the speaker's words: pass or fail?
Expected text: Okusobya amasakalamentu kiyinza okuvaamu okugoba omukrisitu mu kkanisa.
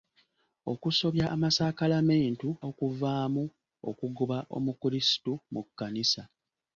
fail